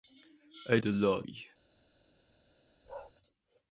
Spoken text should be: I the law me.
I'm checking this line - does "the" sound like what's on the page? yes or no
yes